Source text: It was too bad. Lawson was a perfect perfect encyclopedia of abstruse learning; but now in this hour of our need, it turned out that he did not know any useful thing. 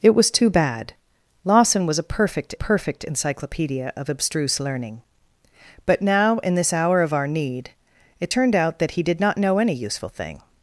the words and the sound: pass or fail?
pass